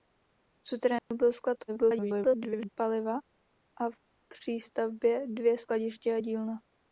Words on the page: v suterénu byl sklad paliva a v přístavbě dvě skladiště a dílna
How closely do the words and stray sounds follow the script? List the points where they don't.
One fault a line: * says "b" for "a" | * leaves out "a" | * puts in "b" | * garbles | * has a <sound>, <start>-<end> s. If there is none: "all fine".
* has a dropout, 1.0-1.1 s
* garbles